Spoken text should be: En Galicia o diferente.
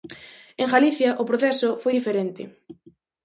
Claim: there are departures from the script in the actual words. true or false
true